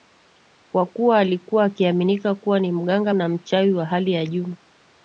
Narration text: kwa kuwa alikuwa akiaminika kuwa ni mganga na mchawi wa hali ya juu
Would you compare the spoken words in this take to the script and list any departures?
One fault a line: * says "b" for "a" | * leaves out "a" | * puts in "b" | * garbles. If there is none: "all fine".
all fine